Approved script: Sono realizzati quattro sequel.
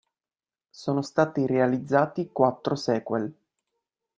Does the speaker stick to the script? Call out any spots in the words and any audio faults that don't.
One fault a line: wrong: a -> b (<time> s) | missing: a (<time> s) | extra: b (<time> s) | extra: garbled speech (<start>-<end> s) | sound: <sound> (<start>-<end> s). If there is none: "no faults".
extra: stati (1.0 s)